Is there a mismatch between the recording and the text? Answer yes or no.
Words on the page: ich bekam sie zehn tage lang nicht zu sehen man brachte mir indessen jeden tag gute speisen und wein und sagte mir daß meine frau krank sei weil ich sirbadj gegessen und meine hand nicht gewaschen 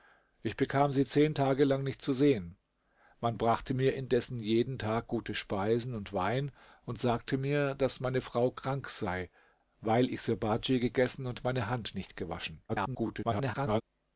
yes